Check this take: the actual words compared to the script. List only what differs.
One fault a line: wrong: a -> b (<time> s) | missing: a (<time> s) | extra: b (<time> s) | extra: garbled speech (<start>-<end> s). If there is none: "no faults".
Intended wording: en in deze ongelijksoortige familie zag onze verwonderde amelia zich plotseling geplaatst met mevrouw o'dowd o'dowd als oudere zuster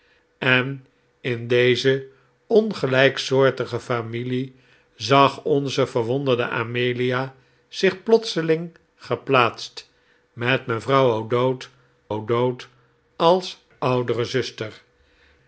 no faults